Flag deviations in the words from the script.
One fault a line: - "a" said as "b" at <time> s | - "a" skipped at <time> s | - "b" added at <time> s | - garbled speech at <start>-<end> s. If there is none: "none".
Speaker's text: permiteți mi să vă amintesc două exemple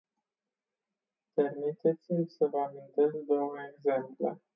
none